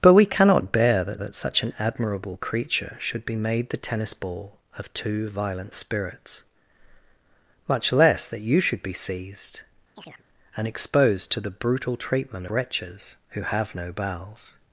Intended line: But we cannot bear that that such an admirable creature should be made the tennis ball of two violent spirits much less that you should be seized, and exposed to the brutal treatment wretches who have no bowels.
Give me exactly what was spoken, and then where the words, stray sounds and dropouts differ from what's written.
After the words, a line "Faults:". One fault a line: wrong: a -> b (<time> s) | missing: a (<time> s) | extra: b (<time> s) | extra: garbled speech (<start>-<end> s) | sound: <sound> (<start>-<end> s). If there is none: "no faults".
But we cannot bear that that such an admirable creature should be made the tennis ball of two violent spirits much less that you should be seized, and exposed to the brutal treatment wretches who have no bowels.
Faults:
sound: chirp (10.0-10.2 s)